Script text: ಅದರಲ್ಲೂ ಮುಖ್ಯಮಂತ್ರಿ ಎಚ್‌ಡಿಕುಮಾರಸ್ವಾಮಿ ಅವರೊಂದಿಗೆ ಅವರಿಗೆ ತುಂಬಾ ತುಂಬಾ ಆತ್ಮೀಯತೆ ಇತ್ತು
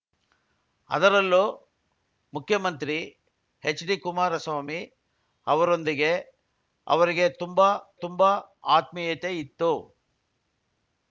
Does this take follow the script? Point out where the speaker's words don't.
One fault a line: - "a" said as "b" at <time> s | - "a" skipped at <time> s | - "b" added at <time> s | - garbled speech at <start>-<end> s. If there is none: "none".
none